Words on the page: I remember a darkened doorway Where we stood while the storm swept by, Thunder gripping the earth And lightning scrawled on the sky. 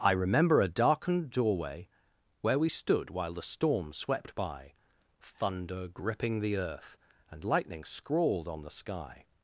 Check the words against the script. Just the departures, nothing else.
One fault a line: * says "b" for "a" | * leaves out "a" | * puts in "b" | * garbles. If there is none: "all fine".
all fine